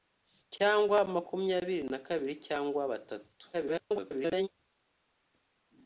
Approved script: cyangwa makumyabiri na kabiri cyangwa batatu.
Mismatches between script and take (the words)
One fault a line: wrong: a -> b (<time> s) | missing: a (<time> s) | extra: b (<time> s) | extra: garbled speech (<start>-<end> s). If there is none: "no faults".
extra: garbled speech (3.5-4.5 s)